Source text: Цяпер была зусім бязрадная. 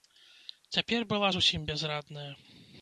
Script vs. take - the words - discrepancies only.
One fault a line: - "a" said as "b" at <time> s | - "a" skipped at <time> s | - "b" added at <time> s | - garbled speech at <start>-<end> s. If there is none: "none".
none